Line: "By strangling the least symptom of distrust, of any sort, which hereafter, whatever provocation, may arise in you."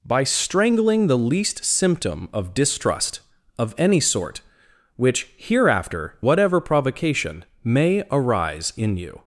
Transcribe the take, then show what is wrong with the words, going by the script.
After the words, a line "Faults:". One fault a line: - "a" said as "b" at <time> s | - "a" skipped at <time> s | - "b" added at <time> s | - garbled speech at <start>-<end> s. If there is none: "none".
"By strangling the least symptom of distrust, of any sort, which hereafter, whatever provocation, may arise in you."
Faults:
none